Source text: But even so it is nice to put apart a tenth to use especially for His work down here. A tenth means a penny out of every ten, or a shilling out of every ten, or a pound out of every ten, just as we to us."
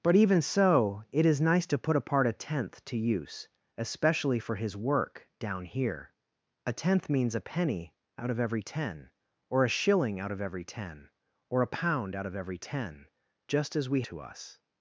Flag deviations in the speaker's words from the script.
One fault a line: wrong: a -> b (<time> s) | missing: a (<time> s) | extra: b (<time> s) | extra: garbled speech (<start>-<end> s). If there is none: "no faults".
no faults